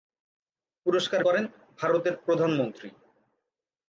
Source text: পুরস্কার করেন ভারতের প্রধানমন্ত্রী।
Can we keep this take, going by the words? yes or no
yes